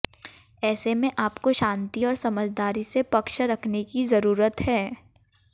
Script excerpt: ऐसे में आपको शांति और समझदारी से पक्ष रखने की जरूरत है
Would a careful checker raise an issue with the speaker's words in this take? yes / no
no